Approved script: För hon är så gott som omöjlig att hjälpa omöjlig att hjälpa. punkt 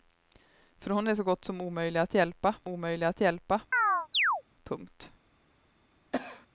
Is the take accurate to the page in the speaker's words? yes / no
yes